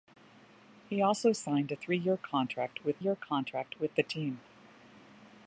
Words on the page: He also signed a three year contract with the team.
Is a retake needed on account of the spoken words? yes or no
yes